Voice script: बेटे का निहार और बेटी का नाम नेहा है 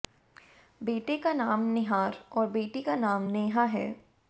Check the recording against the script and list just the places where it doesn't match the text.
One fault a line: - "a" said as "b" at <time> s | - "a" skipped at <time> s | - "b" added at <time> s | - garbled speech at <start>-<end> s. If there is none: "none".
- "नाम" added at 1.3 s